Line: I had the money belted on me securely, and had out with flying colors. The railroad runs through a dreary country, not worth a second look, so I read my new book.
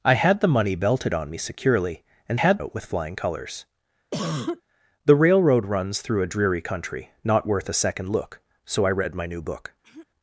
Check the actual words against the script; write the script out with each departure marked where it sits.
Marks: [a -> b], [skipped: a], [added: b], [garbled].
I had the money belted on me securely, and had out with flying colors. The railroad runs through a dreary country, not worth a second look, so I read my new book.